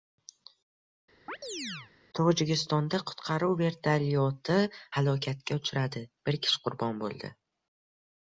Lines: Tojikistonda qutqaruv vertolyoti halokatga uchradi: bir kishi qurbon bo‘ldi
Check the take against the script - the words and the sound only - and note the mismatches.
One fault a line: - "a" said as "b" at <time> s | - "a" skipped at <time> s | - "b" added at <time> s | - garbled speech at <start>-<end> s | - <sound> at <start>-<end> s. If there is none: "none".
- chirp at 1.3-1.9 s